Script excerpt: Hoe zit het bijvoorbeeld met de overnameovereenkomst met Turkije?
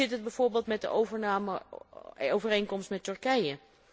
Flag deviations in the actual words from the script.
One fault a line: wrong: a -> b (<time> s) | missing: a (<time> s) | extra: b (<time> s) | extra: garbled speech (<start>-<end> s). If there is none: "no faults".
no faults